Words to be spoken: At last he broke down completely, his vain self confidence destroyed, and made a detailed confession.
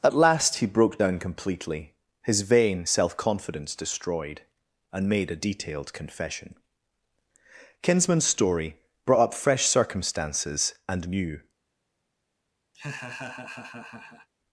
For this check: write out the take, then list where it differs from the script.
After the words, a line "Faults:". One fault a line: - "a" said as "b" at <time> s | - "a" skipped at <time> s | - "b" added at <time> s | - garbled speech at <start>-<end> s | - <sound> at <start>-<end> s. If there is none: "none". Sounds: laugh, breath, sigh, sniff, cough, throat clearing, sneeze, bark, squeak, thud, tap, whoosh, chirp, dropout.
At last he broke down completely, his vain self confidence destroyed, and made a detailed confession. Kinsman's story brought up fresh circumstances and new
Faults:
- "Kinsman's story brought up fresh circumstances and new" added at 7.8 s
- laugh at 12.7-14.3 s